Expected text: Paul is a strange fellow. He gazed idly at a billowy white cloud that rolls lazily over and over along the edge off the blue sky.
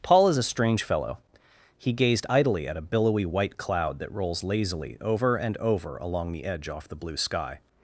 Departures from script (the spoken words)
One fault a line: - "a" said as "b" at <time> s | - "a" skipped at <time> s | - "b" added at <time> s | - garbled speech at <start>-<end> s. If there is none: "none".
none